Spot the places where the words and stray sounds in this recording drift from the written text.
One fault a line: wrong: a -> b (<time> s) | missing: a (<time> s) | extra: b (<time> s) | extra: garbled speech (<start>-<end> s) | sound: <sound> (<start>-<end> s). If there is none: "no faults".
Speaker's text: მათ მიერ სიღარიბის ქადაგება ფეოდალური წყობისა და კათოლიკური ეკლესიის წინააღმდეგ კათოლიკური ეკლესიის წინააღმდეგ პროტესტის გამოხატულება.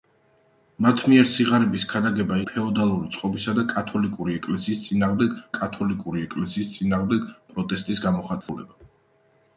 sound: dropout (8.4-8.5 s)